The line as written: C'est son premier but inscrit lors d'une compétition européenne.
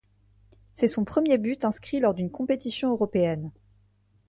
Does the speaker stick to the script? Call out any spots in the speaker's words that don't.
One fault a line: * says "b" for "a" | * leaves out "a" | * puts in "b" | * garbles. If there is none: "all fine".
all fine